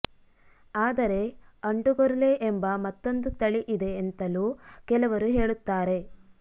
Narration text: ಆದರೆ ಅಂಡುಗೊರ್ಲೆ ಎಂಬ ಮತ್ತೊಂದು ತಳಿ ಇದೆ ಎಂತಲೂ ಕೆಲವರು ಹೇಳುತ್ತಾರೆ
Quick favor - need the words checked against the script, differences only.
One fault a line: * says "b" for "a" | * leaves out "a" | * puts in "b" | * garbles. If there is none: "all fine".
all fine